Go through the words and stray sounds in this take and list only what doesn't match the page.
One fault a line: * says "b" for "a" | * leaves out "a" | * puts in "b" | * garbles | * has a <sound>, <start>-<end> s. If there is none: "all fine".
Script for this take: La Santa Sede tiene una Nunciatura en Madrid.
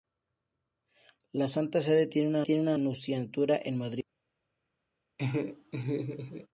* puts in "tiene una"
* has a laugh, 5.2-6.5 s